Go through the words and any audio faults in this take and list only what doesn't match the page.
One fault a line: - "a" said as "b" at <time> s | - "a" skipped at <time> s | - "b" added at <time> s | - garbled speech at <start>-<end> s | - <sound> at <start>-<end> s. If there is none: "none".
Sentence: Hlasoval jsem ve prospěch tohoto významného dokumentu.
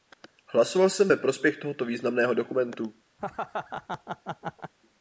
- laugh at 3.2-4.7 s